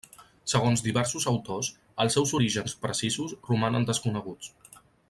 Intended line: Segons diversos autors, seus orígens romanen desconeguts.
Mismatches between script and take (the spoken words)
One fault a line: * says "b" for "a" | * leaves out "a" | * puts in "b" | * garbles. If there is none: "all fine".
* puts in "els"
* puts in "precisos"